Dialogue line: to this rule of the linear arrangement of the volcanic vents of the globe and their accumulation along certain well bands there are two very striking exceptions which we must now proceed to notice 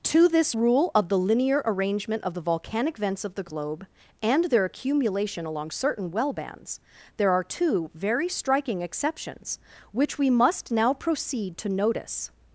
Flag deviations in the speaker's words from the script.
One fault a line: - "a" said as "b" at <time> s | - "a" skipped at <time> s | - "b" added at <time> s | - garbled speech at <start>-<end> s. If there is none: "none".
none